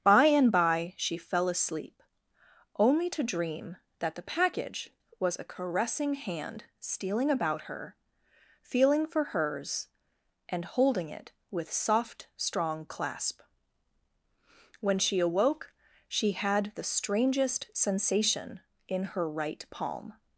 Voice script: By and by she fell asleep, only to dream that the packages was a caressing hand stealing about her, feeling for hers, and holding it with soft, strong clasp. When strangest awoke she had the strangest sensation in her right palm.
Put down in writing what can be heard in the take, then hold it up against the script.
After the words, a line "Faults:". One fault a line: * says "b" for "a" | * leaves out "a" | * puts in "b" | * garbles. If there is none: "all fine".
By and by she fell asleep, only to dream that the package was a caressing hand stealing about her, feeling for hers, and holding it with soft, strong clasp. When she awoke she had the strangest sensation in her right palm.
Faults:
* says "package" for "packages"
* says "she" for "strangest"